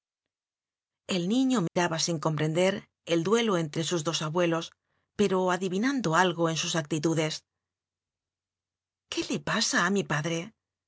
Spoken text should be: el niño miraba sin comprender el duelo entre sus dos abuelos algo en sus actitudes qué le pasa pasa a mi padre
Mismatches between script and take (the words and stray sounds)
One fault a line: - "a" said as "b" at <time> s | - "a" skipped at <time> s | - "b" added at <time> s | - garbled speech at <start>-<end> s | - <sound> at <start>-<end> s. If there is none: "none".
- dropout at 1.7-1.8 s
- "pero adivinando" added at 5.2 s
- "pasa" skipped at 9.8 s